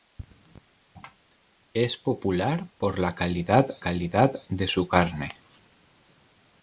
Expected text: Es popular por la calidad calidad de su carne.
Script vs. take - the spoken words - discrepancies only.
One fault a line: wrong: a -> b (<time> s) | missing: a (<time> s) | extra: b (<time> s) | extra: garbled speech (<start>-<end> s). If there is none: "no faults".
no faults